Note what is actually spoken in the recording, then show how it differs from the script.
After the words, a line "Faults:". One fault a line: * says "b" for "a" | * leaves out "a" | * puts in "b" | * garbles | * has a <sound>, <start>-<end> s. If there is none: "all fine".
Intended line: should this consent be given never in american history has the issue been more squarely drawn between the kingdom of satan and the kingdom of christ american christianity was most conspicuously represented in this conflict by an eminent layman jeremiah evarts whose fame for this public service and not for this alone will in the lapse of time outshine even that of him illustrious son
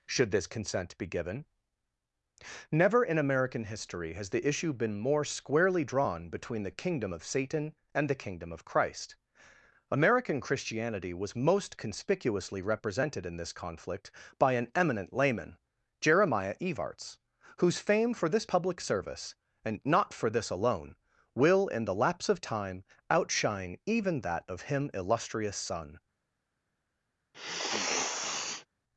should this consent be given never in american history has the issue been more squarely drawn between the kingdom of satan and the kingdom of christ american christianity was most conspicuously represented in this conflict by an eminent layman jeremiah evarts whose fame for this public service and not for this alone will in the lapse of time outshine even that of him illustrious son
Faults:
* has a sniff, 27.3-28.7 s